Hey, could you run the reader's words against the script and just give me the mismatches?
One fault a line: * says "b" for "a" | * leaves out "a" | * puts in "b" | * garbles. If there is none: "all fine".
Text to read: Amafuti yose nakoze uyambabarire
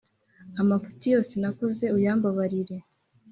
all fine